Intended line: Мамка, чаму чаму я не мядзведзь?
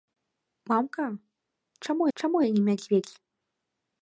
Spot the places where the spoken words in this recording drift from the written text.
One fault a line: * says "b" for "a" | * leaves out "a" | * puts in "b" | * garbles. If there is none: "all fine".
all fine